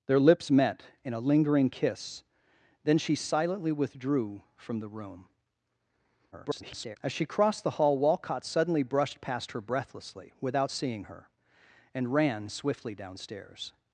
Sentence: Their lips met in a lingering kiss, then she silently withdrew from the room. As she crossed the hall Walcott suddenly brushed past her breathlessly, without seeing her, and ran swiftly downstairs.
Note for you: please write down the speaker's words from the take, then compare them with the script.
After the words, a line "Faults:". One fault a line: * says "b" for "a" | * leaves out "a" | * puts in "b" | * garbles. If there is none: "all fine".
Their lips met in a lingering kiss, then she silently withdrew from the room. [garbled] As she crossed the hall Walcott suddenly brushed past her breathlessly, without seeing her, and ran swiftly downstairs.
Faults:
* garbles